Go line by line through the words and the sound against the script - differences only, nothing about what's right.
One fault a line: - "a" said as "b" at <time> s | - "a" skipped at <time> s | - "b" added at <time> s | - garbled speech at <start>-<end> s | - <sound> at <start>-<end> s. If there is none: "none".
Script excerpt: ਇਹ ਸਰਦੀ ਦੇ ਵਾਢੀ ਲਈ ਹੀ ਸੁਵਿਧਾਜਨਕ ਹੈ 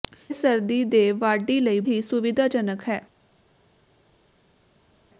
none